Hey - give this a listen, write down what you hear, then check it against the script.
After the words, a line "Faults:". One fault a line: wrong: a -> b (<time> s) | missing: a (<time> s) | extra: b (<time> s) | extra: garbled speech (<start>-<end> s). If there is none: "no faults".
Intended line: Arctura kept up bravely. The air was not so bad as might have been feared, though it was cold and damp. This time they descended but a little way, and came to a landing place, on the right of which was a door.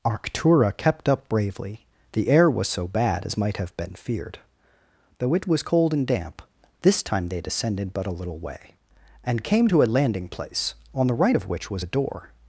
Arctura kept up bravely. The air was so bad as might have been feared, though it was cold and damp. This time they descended but a little way, and came to a landing place, on the right of which was a door.
Faults:
missing: not (2.7 s)